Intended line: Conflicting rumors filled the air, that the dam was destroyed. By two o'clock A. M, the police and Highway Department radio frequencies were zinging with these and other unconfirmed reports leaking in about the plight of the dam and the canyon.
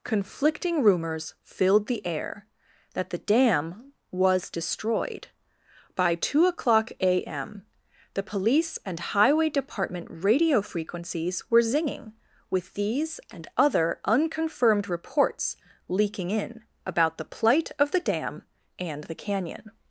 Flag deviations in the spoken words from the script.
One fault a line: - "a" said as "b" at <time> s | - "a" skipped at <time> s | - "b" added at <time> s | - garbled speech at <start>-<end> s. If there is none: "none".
none